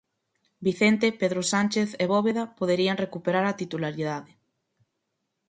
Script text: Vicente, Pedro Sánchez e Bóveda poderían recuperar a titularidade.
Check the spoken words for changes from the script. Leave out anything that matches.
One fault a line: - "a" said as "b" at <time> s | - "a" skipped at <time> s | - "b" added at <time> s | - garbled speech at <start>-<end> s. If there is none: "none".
none